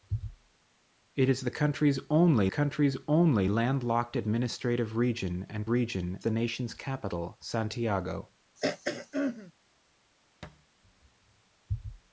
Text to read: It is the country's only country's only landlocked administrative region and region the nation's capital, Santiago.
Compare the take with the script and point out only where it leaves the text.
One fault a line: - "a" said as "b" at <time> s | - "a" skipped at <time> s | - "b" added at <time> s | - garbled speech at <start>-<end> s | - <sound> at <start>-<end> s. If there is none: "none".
- throat clearing at 8.6-9.5 s
- thud at 10.4-10.7 s